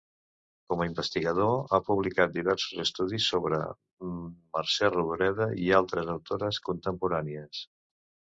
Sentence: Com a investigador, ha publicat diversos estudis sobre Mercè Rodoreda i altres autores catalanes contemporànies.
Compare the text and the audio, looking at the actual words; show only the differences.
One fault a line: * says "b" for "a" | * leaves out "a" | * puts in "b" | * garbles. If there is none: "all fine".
* leaves out "catalanes"